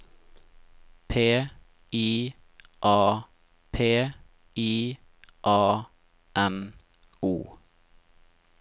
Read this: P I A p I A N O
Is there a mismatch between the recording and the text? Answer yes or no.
no